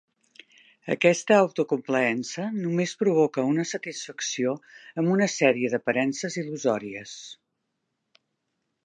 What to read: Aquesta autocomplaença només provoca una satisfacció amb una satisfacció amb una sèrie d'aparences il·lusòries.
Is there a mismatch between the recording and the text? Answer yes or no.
yes